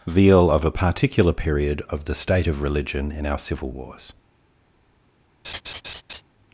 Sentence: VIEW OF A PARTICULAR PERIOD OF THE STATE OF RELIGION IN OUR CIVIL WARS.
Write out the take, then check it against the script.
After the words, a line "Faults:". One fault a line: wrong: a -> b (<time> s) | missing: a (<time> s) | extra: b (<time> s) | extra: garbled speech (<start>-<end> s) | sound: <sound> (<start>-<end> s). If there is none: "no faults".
Veal OF A PARTICULAR PERIOD OF THE STATE OF RELIGION IN OUR CIVIL WARS.
Faults:
wrong: VIEW -> Veal (0.1 s)
sound: laugh (5.4-6.2 s)